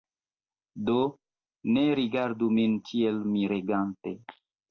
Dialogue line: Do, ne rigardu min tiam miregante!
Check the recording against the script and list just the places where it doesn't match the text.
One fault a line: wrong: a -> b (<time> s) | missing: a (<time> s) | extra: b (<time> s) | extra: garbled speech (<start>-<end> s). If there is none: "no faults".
wrong: tiam -> tiel (2.9 s)